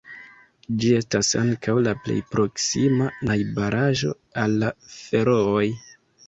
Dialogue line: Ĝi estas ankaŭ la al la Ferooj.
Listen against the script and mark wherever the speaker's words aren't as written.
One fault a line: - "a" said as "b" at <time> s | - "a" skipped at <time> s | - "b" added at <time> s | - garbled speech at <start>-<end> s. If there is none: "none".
- "plej proksima najbaraĵo" added at 2.0 s